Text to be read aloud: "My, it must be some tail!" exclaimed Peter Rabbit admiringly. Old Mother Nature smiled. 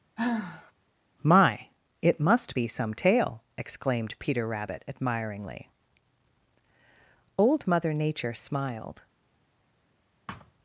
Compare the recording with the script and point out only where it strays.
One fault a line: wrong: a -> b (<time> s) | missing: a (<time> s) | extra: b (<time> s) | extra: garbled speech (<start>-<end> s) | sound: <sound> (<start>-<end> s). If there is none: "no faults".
sound: sigh (0.2-0.7 s)
sound: thud (10.3-10.5 s)